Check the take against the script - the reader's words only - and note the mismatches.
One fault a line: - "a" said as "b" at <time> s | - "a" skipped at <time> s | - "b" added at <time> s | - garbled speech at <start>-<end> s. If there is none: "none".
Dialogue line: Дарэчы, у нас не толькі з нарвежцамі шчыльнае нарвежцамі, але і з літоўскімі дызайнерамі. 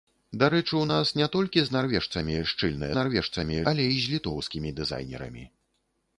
none